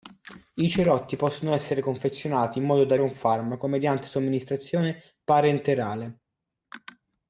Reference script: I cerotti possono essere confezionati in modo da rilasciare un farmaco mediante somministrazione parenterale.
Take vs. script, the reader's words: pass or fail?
fail